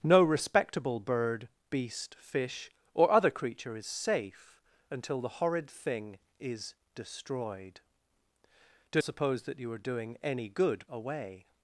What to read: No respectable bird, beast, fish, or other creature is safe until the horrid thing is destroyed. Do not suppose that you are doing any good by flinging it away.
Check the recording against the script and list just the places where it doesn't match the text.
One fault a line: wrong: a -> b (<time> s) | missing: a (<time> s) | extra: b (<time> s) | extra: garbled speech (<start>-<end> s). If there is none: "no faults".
missing: not (9.0 s)
missing: by flinging it (10.8 s)